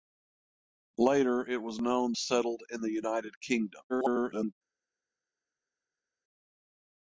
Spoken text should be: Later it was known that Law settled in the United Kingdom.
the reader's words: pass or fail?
fail